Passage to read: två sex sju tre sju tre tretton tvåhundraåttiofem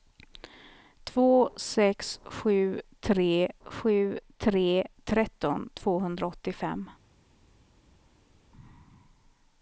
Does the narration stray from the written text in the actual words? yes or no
no